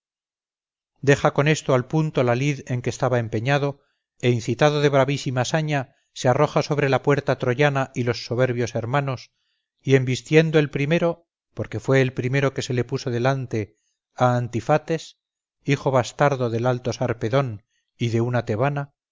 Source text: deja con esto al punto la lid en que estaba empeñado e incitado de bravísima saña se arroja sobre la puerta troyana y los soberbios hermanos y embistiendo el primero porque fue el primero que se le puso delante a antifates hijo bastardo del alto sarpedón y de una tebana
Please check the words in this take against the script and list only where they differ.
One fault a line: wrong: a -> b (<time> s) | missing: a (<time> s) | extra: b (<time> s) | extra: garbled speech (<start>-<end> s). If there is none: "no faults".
no faults